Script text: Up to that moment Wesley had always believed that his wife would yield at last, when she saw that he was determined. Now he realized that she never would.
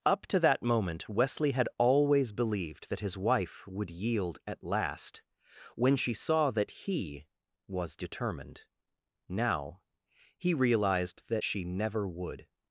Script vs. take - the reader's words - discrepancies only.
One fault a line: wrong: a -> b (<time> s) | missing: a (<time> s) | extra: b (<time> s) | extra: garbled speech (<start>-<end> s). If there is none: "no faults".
no faults